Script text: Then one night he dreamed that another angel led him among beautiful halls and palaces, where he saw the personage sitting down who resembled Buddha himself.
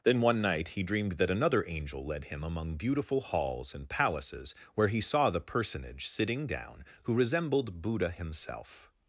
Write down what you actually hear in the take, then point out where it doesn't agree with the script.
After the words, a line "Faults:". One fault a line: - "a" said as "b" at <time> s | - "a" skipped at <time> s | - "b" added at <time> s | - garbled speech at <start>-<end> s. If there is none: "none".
Then one night he dreamed that another angel led him among beautiful halls and palaces, where he saw the personage sitting down who resembled Buddha himself.
Faults:
none